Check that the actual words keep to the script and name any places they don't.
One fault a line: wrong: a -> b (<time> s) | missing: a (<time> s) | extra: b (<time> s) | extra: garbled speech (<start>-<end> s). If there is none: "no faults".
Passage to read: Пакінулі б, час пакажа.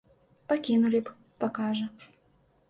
missing: час (1.1 s)